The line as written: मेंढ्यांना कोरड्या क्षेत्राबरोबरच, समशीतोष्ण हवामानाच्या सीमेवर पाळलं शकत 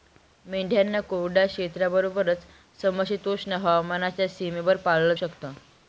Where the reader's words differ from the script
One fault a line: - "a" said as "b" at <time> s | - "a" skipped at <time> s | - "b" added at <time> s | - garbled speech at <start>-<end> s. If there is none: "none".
none